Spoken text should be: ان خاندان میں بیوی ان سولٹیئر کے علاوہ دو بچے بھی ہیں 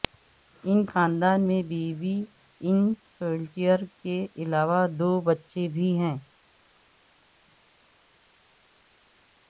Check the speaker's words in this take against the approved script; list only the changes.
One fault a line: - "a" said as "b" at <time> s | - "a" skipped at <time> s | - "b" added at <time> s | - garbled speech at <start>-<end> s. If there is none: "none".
none